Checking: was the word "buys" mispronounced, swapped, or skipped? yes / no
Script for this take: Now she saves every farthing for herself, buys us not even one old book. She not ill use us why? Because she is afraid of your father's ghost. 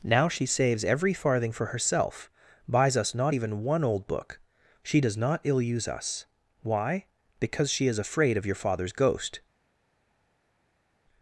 no